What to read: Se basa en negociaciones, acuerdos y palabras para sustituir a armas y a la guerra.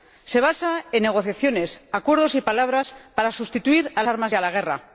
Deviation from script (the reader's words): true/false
false